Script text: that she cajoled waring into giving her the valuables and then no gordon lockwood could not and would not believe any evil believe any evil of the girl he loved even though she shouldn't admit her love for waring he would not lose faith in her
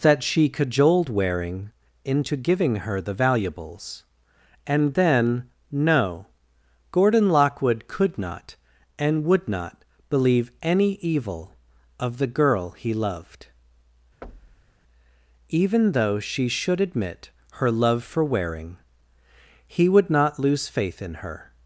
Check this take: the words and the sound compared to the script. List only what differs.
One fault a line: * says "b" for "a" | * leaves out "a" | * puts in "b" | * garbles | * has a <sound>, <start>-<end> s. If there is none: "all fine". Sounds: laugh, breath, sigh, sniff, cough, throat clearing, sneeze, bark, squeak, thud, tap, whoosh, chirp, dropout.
* leaves out "believe any evil"
* has a thud, 14.2-14.8 s
* says "should" for "shouldn't"